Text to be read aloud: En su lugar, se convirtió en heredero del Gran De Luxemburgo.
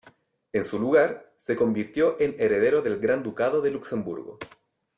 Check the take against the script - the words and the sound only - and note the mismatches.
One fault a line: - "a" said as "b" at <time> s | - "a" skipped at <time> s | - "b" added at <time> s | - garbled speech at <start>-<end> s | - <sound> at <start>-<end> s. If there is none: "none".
- "Ducado" added at 3.2 s